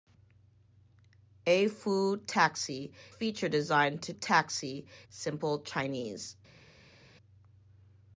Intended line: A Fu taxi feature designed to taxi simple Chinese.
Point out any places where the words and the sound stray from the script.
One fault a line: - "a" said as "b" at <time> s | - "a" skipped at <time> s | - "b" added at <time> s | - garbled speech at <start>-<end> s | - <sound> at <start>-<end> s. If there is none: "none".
none